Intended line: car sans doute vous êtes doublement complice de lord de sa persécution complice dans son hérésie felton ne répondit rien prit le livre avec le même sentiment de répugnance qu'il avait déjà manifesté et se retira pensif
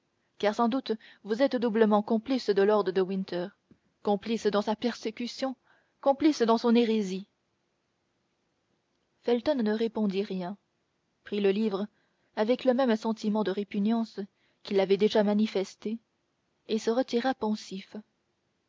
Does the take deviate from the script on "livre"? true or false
false